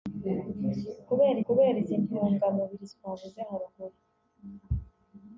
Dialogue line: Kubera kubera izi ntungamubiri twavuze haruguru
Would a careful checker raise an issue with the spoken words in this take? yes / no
no